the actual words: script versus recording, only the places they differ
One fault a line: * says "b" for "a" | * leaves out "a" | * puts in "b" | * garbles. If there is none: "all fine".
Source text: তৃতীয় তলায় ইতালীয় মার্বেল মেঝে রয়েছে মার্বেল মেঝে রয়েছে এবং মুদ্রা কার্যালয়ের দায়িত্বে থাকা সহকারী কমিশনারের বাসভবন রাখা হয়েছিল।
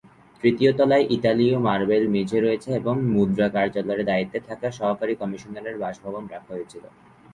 * leaves out "মার্বেল মেঝে রয়েছে"